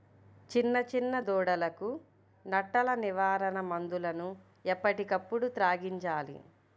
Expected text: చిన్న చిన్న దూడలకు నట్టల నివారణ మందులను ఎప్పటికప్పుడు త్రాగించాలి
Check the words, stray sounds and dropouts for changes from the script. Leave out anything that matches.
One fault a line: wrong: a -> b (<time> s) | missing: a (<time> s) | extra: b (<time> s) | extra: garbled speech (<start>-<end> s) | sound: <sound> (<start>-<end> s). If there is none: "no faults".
no faults